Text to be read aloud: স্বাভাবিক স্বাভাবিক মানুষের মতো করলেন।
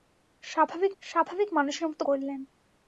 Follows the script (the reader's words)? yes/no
yes